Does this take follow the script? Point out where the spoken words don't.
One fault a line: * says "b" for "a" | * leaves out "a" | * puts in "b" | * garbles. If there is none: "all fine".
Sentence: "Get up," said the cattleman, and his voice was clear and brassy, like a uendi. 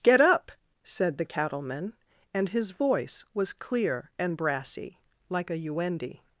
all fine